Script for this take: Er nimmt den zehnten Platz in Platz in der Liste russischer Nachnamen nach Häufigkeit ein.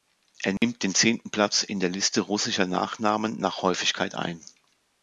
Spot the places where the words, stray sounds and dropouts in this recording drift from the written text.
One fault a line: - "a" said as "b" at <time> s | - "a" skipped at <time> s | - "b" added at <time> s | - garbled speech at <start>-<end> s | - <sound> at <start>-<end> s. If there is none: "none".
- dropout at 0.6-0.6 s
- "Platz in" skipped at 1.8 s